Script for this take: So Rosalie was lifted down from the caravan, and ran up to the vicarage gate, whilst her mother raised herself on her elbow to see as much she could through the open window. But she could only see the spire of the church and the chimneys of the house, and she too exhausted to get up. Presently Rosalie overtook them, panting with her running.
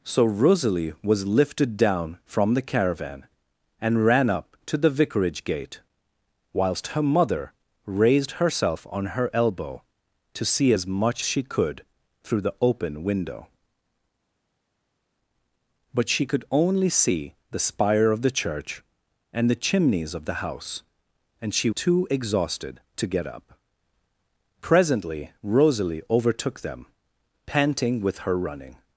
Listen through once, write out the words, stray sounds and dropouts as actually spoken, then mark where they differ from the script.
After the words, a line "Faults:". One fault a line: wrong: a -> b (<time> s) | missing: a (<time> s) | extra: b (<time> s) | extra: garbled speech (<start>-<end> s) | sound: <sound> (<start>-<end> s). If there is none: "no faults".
So Rosalie was lifted down from the caravan, and ran up to the vicarage gate, whilst her mother raised herself on her elbow to see as much she could through the open window. But she could only see the spire of the church and the chimneys of the house, and she too exhausted to get up. Presently Rosalie overtook them, panting with her running.
Faults:
no faults